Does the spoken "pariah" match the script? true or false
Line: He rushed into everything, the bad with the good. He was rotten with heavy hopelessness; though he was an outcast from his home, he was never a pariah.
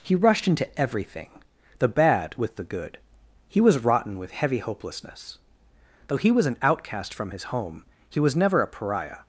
true